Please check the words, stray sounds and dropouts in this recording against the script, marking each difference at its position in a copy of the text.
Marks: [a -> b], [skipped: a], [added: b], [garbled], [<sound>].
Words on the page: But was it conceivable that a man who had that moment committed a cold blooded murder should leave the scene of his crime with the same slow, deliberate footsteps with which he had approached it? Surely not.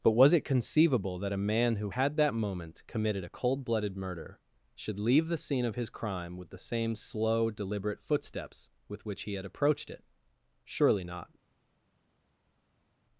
But was it conceivable that a man who had that moment committed a cold blooded murder should leave the scene of his crime with the same slow, deliberate footsteps with which he had approached it? Surely not.